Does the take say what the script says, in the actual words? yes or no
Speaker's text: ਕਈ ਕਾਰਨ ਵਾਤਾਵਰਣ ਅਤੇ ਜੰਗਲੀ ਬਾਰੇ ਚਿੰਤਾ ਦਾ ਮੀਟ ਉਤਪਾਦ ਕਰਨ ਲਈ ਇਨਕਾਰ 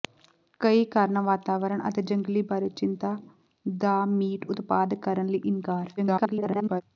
no